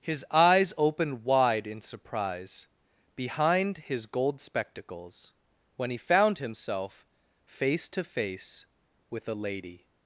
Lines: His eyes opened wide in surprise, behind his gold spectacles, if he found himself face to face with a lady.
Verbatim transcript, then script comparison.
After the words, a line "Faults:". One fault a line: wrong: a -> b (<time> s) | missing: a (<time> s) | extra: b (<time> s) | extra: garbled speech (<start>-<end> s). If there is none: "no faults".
His eyes opened wide in surprise, behind his gold spectacles, when he found himself face to face with a lady.
Faults:
wrong: if -> when (5.8 s)